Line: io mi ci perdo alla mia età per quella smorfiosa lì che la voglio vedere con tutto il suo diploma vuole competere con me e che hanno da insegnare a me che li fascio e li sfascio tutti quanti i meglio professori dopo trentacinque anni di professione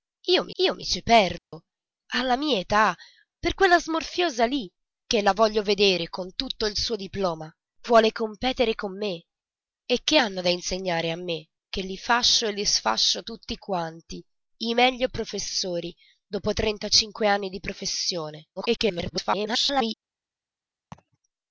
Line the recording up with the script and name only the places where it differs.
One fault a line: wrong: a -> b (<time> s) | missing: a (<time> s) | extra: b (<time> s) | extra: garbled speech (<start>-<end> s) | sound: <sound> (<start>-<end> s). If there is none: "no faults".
extra: io mi (0.6 s)
sound: dropout (1.4-1.5 s)
extra: garbled speech (18.6-19.9 s)
sound: laugh (20.9-21.2 s)